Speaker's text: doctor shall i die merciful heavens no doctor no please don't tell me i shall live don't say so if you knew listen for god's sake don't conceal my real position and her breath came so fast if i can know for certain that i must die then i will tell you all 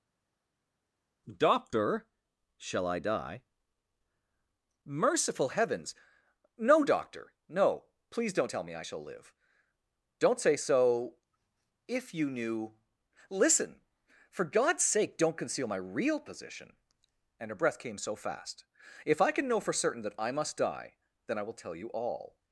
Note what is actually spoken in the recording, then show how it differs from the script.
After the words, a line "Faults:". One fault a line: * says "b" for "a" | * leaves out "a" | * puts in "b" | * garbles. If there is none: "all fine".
doctor shall i die merciful heavens no doctor no please don't tell me i shall live don't say so if you knew listen for god's sake don't conceal my real position and her breath came so fast if i can know for certain that i must die then i will tell you all
Faults:
all fine